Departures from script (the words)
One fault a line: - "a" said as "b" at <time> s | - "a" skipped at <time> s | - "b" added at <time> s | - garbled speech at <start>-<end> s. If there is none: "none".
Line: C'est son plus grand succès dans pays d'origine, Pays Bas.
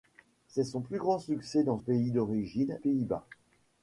none